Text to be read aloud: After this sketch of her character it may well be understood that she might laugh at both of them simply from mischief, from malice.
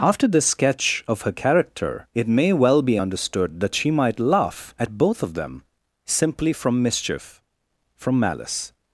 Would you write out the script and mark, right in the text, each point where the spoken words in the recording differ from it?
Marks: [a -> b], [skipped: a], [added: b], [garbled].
After this sketch of her character it may well be understood that she might laugh at both of them simply from mischief, from malice.